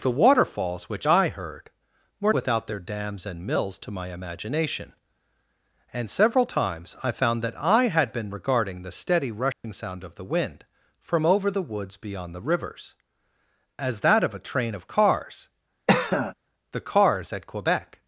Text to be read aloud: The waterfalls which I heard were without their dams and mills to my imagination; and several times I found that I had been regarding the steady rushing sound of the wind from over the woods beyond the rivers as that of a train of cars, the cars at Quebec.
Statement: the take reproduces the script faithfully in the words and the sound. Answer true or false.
false